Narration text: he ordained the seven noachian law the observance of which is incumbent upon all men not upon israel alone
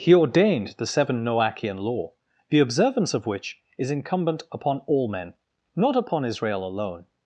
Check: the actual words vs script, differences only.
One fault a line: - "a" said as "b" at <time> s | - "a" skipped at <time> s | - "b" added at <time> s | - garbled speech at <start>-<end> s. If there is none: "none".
none